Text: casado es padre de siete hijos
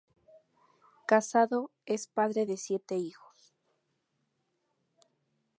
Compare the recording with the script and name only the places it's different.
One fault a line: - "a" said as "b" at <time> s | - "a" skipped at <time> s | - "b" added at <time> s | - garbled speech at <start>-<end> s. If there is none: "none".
none